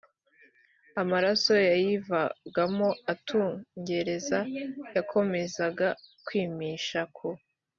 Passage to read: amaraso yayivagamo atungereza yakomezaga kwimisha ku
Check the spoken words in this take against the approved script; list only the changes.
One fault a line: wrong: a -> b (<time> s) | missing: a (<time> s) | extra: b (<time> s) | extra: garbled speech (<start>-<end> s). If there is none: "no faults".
no faults